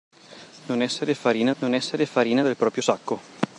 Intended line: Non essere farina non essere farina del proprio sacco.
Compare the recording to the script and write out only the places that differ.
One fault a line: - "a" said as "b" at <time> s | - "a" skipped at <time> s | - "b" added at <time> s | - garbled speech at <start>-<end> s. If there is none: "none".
none